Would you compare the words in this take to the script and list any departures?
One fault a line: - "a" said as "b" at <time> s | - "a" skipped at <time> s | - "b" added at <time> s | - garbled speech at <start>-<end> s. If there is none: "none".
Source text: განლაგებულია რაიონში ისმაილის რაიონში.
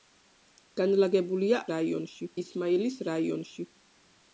none